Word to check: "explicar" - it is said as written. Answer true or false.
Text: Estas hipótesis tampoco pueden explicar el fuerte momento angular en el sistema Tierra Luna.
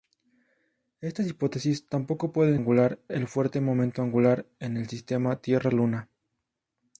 false